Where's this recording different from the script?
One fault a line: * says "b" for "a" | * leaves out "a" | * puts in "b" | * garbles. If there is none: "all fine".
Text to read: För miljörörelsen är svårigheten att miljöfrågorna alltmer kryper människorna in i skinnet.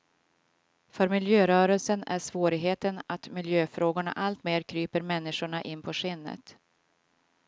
* says "på" for "i"